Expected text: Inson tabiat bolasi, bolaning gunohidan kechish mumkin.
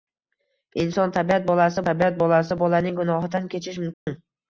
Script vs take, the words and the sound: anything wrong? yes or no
yes